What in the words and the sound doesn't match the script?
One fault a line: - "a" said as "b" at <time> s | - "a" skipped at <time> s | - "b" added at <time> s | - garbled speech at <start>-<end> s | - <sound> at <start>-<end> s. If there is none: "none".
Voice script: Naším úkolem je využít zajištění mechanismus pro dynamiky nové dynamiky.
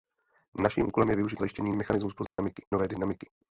- dropout at 2.3-2.4 s